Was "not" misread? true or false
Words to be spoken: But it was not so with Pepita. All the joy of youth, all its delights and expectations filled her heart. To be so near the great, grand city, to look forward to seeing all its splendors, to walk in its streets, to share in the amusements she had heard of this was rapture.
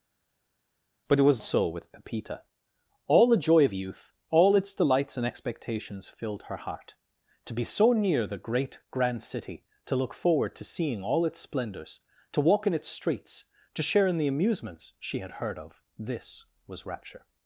true